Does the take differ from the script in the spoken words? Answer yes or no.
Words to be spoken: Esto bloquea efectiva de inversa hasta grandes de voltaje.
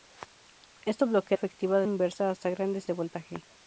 no